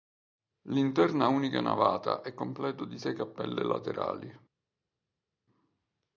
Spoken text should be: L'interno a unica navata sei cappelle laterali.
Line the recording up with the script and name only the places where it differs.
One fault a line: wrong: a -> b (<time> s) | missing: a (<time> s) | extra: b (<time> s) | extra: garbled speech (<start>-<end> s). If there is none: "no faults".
extra: è completo di (2.2 s)